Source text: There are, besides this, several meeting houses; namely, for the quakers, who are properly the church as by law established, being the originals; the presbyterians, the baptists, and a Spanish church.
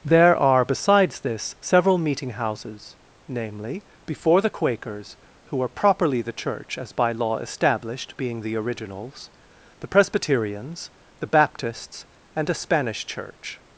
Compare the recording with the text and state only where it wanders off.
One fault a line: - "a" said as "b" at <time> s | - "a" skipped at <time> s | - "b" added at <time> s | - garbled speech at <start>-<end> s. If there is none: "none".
- "for" said as "before" at 4.1 s